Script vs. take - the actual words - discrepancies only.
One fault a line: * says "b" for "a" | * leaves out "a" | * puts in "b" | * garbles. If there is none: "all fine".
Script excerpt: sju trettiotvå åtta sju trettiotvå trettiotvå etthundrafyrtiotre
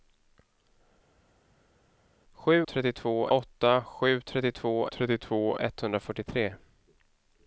all fine